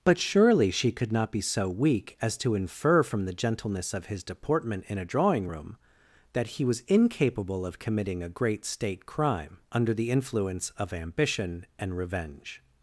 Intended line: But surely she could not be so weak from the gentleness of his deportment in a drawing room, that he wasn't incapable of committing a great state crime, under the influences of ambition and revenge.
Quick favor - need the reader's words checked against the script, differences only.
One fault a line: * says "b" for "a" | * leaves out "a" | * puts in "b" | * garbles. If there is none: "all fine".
* puts in "as to infer"
* says "was" for "wasn't"
* says "influence" for "influences"